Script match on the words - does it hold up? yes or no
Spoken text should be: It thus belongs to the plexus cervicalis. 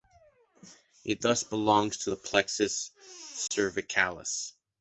yes